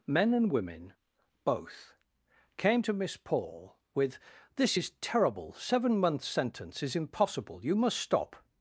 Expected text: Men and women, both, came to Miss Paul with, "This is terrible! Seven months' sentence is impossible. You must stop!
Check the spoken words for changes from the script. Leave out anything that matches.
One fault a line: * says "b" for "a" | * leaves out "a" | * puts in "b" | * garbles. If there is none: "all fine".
all fine